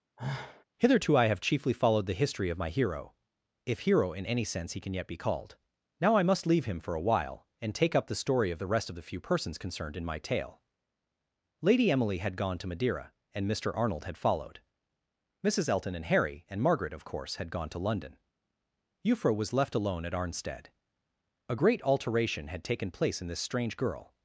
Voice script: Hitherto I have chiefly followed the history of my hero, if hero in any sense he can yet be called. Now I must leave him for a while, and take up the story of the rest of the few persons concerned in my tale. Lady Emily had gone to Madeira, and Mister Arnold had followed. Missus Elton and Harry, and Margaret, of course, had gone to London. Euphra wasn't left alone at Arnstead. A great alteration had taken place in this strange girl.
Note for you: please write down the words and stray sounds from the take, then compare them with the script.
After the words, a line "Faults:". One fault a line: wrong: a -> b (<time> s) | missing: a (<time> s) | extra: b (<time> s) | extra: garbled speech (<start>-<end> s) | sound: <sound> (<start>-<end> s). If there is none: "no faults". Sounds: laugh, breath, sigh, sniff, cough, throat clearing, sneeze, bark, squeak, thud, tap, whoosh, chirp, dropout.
Hitherto I have chiefly followed the history of my hero, if hero in any sense he can yet be called. Now I must leave him for a while, and take up the story of the rest of the few persons concerned in my tale. Lady Emily had gone to Madeira, and Mister Arnold had followed. Missus Elton and Harry, and Margaret, of course, had gone to London. Euphra was left alone at Arnstead. A great alteration had taken place in this strange girl.
Faults:
sound: sigh (0.2-0.6 s)
wrong: wasn't -> was (19.3 s)